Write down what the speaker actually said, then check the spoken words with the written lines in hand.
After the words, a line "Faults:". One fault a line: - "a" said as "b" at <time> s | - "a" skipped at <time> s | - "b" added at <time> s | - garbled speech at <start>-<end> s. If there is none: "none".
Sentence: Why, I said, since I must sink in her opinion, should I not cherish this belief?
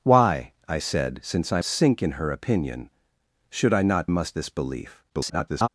Why, I said, since I sink in her opinion, should I not must this belief? [garbled]
Faults:
- "must" skipped at 1.6 s
- "cherish" said as "must" at 4.1 s
- garbled speech at 5.1-5.7 s